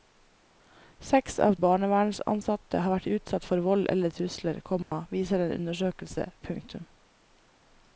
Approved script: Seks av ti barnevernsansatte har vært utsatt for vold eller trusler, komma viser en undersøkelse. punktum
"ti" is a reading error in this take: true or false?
true